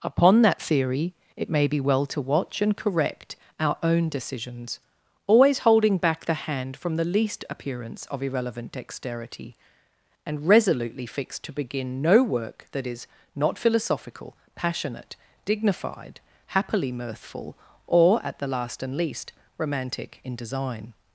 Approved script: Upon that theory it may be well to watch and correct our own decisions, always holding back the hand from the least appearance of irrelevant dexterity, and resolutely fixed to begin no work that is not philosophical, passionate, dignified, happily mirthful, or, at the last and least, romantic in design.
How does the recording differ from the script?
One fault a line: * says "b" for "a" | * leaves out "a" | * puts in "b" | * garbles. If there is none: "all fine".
all fine